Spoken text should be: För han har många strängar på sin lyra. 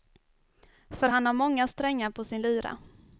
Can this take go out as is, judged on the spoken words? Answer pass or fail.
pass